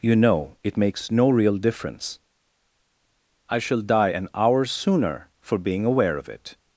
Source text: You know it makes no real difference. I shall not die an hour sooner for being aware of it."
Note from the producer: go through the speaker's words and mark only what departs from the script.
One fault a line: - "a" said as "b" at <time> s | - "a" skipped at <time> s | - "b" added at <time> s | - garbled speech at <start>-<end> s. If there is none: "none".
- "not" skipped at 3.8 s